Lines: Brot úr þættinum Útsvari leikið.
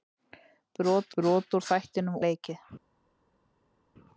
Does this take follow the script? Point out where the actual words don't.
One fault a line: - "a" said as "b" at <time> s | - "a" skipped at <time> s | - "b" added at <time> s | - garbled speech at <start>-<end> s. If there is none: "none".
- "brot" added at 1.2 s
- "Útsvari" skipped at 2.2 s